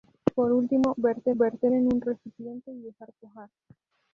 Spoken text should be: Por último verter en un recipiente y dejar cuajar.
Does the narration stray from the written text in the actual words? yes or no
yes